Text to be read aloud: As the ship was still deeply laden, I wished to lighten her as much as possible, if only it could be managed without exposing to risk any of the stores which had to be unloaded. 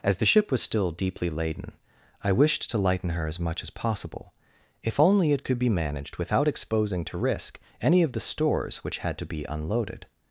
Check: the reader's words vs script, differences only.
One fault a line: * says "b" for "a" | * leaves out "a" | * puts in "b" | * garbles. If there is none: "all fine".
all fine